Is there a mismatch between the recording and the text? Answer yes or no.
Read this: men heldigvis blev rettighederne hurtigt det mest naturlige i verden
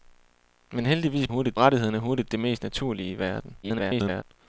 yes